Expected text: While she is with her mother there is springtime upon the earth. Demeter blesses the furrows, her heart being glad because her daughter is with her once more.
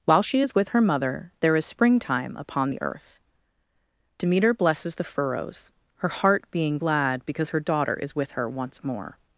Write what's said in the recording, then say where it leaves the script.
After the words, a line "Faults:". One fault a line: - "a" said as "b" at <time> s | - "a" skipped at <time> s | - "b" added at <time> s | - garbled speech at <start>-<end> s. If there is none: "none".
While she is with her mother there is springtime upon the earth. Demeter blesses the furrows, her heart being glad because her daughter is with her once more.
Faults:
none